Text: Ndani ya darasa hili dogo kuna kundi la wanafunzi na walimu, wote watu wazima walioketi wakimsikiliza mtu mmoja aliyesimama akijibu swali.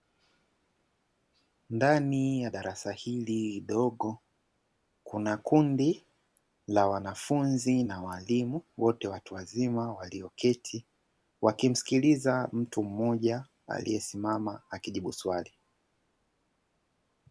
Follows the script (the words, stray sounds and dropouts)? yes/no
yes